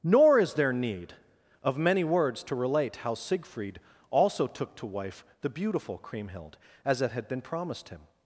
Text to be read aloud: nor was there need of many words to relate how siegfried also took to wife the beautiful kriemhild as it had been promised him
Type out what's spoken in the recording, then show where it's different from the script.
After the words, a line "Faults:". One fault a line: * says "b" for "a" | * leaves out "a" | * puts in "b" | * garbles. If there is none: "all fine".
nor is there need of many words to relate how siegfried also took to wife the beautiful kriemhild as it had been promised him
Faults:
* says "is" for "was"